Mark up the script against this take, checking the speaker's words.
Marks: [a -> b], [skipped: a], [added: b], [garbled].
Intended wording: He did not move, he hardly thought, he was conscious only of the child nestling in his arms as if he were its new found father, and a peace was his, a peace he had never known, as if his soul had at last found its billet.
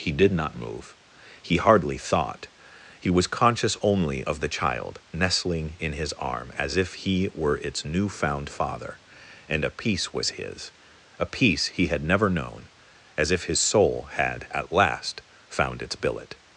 He did not move, he hardly thought, he was conscious only of the child nestling in his [arms -> arm] as if he were its new found father, and a peace was his, a peace he had never known, as if his soul had at last found its billet.